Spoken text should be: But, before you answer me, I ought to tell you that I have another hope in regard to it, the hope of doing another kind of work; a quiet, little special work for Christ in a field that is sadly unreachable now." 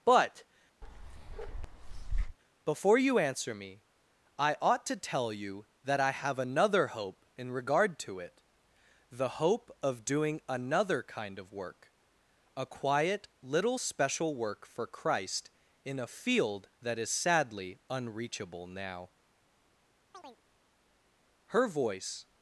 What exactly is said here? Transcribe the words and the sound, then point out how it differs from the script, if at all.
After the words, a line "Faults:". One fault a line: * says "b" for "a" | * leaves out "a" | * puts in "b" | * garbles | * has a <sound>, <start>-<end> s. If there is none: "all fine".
But, before you answer me, I ought to tell you that I have another hope in regard to it, the hope of doing another kind of work; a quiet, little special work for Christ in a field that is sadly unreachable now." Her voice
Faults:
* has a bark, 0.8-2.4 s
* has a chirp, 20.1-20.4 s
* puts in "Her voice"